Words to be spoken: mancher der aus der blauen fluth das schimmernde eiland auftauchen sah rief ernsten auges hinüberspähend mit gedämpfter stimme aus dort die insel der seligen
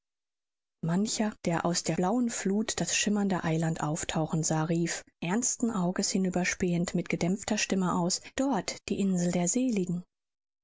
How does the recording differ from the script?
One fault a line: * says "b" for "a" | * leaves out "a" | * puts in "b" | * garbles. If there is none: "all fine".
all fine